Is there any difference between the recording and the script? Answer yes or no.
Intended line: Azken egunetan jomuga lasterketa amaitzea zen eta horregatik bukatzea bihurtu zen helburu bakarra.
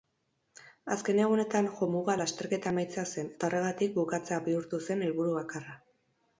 no